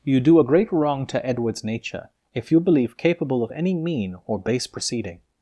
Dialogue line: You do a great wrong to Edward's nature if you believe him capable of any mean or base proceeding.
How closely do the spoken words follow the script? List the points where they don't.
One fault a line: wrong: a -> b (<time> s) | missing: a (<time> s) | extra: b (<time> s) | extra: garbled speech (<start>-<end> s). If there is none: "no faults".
missing: him (2.9 s)